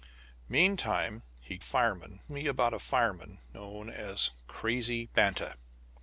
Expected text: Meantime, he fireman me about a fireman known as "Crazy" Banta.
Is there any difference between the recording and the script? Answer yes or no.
no